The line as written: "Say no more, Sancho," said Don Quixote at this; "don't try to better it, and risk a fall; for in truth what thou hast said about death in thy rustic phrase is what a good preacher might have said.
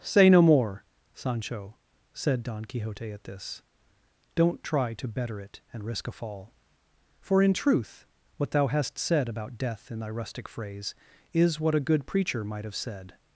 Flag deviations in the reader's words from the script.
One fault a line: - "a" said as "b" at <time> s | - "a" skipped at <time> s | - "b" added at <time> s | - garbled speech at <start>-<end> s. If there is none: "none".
none